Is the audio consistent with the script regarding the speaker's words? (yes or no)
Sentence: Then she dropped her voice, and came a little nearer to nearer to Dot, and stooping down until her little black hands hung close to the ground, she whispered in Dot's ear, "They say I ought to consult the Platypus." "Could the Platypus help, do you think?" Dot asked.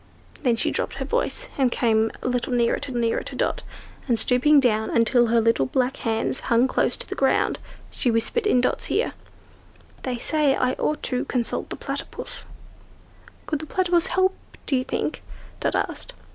yes